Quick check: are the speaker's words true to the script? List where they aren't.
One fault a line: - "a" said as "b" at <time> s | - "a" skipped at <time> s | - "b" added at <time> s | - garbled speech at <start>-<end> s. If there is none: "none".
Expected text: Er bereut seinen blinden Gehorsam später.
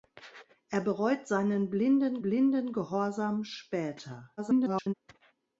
- "blinden" added at 2.2 s
- garbled speech at 4.4-4.9 s